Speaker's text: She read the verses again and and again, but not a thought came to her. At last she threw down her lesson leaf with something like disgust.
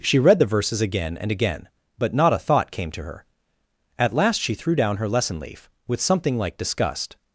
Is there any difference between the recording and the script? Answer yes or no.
yes